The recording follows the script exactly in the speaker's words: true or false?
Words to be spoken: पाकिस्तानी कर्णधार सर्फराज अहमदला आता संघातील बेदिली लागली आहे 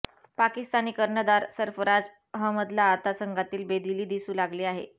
false